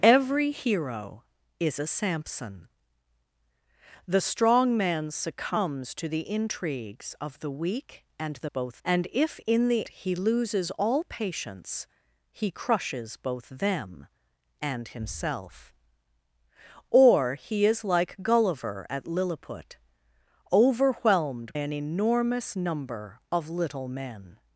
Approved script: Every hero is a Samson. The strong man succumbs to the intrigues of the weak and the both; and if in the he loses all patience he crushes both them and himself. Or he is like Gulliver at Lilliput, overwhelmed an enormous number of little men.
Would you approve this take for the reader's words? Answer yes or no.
yes